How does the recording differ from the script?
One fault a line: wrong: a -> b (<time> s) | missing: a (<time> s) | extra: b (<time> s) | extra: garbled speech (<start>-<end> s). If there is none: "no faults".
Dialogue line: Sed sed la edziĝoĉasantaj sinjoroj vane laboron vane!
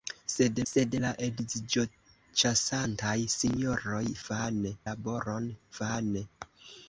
no faults